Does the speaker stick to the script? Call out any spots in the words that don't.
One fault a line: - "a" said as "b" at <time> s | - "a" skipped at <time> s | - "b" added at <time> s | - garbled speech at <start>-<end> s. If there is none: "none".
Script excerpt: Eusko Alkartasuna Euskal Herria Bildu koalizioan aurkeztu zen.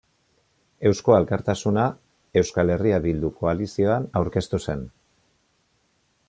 none